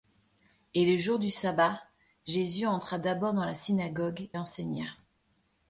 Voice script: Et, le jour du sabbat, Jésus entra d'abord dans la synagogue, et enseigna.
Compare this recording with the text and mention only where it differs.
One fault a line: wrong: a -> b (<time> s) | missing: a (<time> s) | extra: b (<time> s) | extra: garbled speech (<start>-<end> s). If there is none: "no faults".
no faults